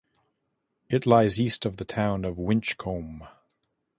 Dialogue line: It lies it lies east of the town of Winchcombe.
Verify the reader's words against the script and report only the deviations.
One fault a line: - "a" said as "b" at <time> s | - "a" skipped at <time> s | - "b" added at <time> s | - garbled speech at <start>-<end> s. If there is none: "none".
- "it lies" skipped at 1.4 s